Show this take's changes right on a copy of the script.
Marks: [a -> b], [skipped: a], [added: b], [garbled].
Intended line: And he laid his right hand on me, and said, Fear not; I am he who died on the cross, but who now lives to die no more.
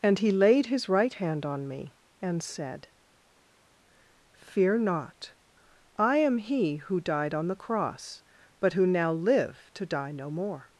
And he laid his right hand on me, and said, Fear not; I am he who died on the cross, but who now [lives -> live] to die no more.